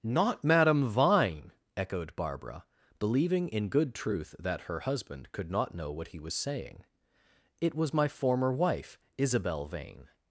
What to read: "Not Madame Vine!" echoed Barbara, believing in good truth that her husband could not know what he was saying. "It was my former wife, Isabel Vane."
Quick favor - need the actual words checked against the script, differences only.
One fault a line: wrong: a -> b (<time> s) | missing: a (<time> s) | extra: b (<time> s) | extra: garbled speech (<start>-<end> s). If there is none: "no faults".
no faults